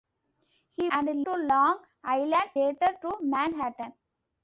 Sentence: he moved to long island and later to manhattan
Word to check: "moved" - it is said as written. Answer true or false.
false